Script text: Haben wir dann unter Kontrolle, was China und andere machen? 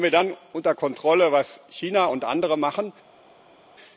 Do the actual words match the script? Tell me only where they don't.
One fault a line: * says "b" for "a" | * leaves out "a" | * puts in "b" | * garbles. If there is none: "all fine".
all fine